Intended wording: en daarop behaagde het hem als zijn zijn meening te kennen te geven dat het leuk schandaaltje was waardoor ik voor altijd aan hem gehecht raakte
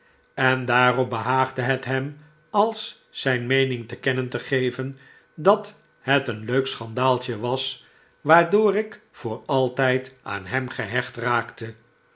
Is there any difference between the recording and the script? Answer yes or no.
yes